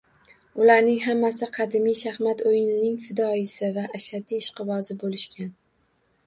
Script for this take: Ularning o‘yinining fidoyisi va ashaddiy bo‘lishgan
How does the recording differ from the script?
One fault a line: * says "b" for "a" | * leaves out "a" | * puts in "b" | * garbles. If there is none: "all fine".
* puts in "hammasi qadimiy shaxmat"
* puts in "ishqibozi"